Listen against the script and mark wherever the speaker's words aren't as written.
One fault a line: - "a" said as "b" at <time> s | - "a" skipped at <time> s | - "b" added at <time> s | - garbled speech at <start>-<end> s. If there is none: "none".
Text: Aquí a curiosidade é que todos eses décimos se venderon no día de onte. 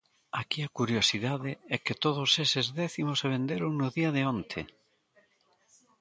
none